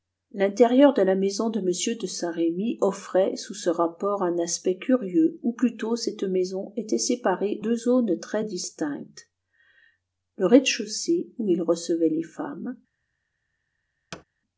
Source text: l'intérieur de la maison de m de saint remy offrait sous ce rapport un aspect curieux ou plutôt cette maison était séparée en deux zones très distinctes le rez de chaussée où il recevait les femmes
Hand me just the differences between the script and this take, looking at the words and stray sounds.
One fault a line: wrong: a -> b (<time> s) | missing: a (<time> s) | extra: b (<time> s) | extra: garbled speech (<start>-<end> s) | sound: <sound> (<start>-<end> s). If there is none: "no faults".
missing: en (7.6 s)
sound: thud (14.1-14.2 s)